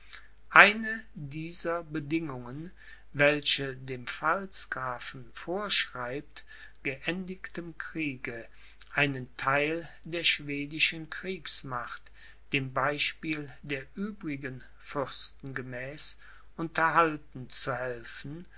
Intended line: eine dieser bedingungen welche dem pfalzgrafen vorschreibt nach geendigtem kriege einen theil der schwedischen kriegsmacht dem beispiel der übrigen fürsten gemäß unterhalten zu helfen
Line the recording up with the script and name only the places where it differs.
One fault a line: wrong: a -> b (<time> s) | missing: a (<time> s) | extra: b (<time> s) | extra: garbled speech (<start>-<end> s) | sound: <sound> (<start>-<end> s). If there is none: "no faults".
missing: nach (6.4 s)